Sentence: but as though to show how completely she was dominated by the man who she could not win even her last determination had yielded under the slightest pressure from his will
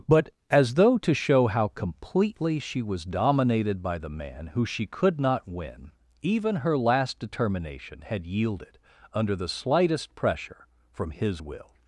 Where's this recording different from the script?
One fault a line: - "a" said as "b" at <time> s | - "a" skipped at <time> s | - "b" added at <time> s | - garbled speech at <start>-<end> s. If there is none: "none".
none